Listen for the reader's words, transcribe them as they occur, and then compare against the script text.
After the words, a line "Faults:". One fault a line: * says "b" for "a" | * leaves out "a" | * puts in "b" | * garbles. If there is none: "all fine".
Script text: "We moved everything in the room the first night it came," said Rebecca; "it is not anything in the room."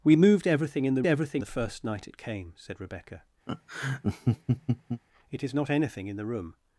"We moved everything in the everything the first night it came," said Rebecca; "it is not anything in the room."
Faults:
* says "everything" for "room"